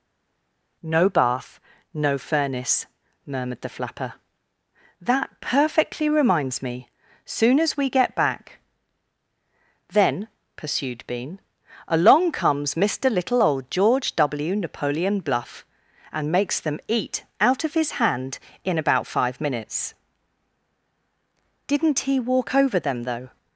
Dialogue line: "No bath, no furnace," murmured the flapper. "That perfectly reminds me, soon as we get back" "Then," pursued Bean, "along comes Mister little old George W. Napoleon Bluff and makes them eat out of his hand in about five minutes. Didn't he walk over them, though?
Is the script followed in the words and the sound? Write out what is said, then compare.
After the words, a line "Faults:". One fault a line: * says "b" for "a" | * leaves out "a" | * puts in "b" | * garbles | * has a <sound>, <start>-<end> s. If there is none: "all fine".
"No bath, no furnace," murmured the flapper. "That perfectly reminds me, soon as we get back" "Then," pursued Bean, "along comes Mister little old George W. Napoleon Bluff and makes them eat out of his hand in about five minutes. Didn't he walk over them, though?
Faults:
all fine